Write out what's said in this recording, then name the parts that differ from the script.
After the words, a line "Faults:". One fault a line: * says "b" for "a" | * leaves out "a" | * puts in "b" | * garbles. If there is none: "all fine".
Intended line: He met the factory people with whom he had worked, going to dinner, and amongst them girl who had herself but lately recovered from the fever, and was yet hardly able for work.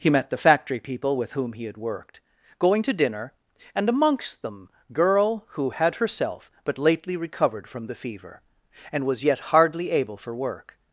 He met the factory people with whom he had worked, going to dinner, and amongst them girl who had herself but lately recovered from the fever, and was yet hardly able for work.
Faults:
all fine